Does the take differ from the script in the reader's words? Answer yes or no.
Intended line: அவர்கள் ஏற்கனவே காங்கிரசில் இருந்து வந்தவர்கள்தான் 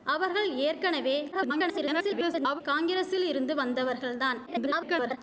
yes